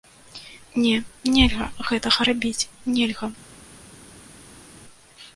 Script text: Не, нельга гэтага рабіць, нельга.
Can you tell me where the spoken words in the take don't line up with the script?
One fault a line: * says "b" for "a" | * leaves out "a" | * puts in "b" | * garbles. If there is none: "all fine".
all fine